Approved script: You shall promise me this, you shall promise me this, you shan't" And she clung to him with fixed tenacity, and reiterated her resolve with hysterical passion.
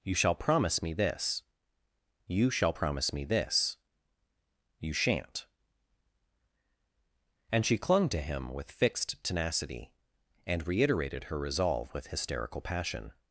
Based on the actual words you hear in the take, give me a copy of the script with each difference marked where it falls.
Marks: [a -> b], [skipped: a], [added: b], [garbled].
You shall promise me this, you shall promise me this, you shan't" And she clung to him with fixed tenacity, and reiterated her resolve with hysterical passion.